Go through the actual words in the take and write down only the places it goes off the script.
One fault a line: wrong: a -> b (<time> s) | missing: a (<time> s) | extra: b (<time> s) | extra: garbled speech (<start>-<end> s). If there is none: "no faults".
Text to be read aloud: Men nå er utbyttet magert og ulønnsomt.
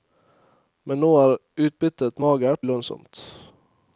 missing: og (2.7 s)